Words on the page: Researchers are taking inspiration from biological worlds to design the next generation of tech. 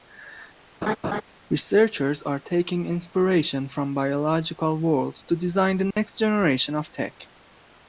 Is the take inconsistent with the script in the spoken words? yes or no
no